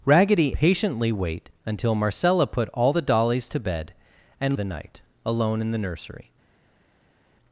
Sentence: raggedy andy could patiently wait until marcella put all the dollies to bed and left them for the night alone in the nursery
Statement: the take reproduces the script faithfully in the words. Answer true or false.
false